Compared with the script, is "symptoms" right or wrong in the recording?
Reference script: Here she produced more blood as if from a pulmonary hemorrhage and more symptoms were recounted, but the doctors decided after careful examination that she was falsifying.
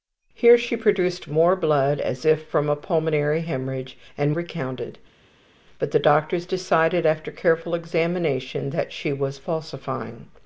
wrong